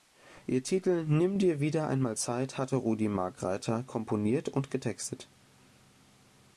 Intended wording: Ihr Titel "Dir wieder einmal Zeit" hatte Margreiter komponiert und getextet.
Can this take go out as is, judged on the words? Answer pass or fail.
fail